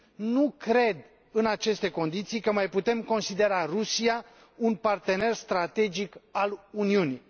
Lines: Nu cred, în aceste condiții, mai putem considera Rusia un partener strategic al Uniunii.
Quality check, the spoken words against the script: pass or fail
fail